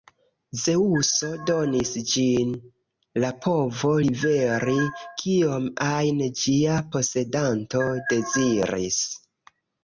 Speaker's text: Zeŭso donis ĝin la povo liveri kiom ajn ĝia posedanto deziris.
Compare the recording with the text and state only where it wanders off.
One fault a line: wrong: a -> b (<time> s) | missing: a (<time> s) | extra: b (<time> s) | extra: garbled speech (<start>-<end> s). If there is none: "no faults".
no faults